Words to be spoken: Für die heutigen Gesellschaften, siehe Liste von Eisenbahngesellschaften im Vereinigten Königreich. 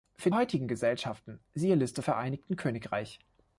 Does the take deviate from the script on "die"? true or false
true